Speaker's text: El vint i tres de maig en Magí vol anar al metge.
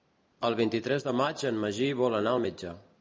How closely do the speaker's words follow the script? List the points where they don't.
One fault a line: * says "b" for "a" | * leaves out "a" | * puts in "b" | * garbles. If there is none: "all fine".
all fine